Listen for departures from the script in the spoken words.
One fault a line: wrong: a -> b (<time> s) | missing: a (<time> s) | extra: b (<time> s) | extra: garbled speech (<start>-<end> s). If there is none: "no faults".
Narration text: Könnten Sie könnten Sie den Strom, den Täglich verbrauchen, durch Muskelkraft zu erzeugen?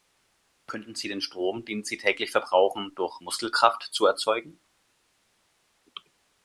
missing: könnten Sie (1.1 s)
extra: Sie (1.8 s)